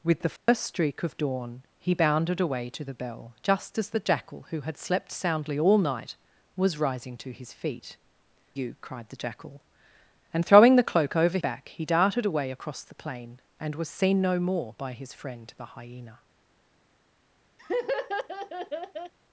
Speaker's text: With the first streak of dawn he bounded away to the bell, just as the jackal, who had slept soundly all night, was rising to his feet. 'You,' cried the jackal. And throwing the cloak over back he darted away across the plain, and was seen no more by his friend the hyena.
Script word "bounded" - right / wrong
right